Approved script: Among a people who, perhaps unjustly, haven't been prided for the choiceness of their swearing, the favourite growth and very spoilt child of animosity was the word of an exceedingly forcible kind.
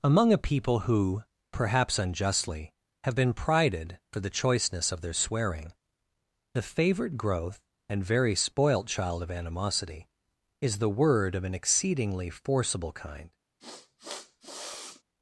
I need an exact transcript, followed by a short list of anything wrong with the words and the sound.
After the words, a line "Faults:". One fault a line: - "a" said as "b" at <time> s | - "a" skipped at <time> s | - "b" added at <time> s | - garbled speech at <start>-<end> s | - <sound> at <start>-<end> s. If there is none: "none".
Among a people who, perhaps unjustly, have been prided for the choiceness of their swearing, the favourite growth and very spoilt child of animosity is the word of an exceedingly forcible kind.
Faults:
- "haven't" said as "have" at 3.0 s
- "was" said as "is" at 10.6 s
- sniff at 13.6-15.0 s